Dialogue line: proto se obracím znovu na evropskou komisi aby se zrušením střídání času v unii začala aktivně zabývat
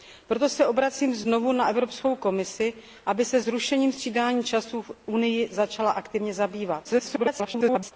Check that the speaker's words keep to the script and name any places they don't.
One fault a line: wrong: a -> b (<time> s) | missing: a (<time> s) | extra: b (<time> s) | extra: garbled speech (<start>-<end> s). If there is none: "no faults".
extra: garbled speech (6.8-7.9 s)